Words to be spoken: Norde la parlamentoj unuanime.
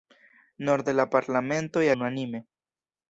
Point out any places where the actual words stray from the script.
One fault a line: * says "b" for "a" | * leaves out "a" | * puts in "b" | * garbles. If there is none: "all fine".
all fine